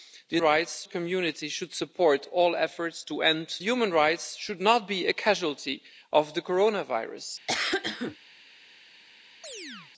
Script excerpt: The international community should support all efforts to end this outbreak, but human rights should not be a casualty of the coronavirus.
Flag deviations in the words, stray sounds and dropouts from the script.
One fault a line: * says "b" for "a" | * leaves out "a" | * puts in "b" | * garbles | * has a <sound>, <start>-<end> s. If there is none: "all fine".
* says "rights" for "international"
* leaves out "this outbreak but"
* has a cough, 7.5-8.2 s
* has a chirp, 9.4-9.9 s